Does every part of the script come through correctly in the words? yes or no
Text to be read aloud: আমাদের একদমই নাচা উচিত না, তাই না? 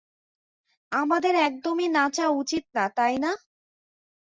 yes